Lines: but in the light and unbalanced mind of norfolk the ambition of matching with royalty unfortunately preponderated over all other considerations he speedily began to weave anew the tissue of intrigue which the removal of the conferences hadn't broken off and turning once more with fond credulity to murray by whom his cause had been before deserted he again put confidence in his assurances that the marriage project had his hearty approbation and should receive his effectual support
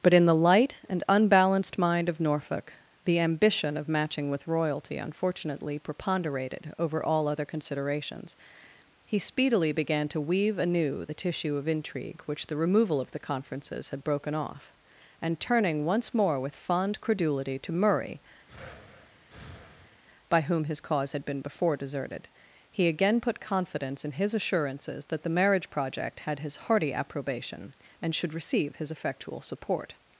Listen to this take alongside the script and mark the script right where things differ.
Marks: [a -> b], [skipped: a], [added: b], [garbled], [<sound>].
but in the light and unbalanced mind of norfolk the ambition of matching with royalty unfortunately preponderated over all other considerations he speedily began to weave anew the tissue of intrigue which the removal of the conferences [hadn't -> had] broken off and turning once more with fond credulity to murray [breath] by whom his cause had been before deserted he again put confidence in his assurances that the marriage project had his hearty approbation and should receive his effectual support